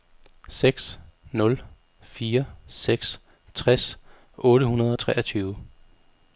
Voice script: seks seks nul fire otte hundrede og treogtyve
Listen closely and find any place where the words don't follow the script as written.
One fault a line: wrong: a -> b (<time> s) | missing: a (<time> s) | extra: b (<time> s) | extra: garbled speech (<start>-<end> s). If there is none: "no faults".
missing: seks (1.0 s)
extra: seks tres (2.7 s)